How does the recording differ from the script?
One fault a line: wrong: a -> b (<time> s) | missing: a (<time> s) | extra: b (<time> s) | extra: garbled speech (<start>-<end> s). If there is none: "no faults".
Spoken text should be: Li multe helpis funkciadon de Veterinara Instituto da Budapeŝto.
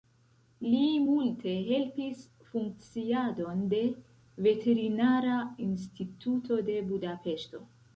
wrong: da -> de (6.7 s)